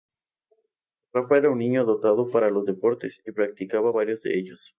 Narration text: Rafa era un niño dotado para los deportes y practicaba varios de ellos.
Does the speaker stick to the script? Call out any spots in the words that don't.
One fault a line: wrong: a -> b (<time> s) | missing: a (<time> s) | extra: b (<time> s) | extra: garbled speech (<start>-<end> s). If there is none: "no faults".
no faults